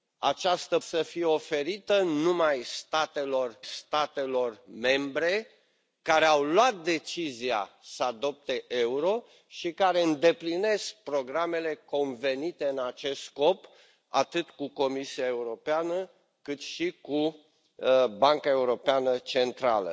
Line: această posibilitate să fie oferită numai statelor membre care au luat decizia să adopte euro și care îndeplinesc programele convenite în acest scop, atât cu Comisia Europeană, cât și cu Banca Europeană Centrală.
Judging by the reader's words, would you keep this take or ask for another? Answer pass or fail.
fail